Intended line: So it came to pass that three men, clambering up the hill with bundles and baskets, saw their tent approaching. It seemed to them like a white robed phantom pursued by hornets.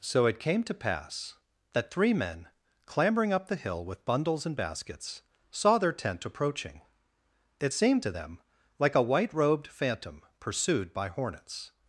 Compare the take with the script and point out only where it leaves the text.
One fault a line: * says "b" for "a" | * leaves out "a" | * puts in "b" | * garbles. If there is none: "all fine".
all fine